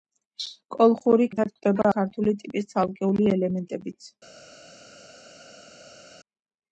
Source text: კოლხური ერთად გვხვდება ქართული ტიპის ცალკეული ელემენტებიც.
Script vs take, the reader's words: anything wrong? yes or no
no